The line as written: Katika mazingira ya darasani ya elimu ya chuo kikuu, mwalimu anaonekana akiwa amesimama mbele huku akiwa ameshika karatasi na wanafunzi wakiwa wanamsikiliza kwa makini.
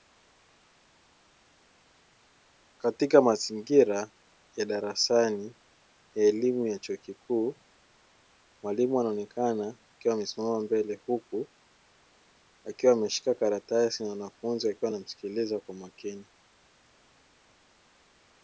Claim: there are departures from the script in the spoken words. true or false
false